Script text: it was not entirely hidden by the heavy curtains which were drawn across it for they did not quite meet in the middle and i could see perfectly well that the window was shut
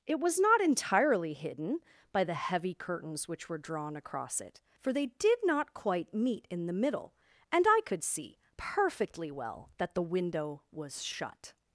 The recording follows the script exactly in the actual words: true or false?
true